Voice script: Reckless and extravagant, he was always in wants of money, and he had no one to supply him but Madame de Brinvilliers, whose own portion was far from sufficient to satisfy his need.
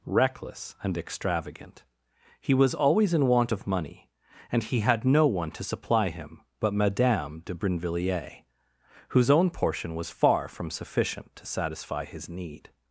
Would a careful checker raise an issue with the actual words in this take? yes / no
yes